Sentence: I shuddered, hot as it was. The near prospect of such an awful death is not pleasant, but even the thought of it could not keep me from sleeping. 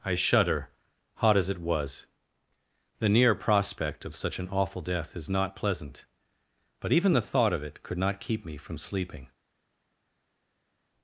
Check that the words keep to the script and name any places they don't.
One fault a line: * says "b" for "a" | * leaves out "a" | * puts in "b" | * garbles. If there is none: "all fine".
* says "shudder" for "shuddered"